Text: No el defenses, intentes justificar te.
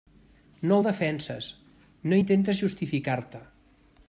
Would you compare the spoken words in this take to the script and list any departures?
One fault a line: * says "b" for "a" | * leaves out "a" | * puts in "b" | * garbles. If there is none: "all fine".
* puts in "no"